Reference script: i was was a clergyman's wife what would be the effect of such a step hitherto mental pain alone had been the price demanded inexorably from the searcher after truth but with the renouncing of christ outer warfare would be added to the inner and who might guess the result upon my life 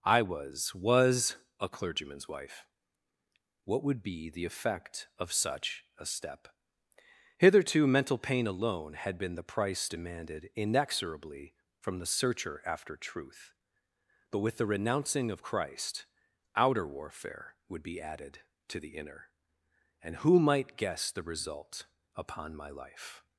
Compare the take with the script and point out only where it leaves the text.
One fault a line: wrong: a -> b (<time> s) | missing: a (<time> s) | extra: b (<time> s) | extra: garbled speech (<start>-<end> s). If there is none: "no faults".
no faults